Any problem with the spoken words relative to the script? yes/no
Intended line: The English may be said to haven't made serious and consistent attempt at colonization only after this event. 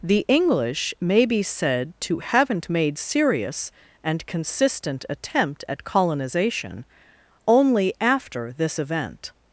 no